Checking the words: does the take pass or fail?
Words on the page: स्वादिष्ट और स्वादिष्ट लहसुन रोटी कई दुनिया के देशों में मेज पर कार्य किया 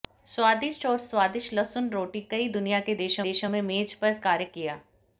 fail